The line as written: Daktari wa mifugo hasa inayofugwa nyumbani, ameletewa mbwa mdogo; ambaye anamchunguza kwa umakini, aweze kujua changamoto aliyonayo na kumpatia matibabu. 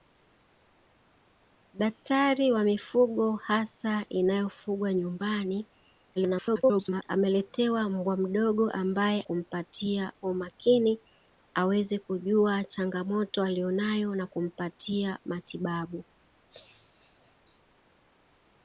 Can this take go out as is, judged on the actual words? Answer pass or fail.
fail